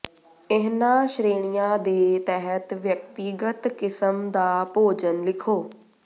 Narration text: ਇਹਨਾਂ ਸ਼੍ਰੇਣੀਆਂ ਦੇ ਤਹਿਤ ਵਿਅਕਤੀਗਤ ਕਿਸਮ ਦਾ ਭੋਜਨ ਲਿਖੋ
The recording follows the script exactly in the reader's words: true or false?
true